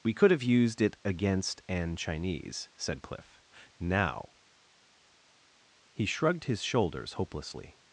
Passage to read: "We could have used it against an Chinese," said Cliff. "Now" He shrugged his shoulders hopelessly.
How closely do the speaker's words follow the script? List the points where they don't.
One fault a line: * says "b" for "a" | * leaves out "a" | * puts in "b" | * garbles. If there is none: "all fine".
all fine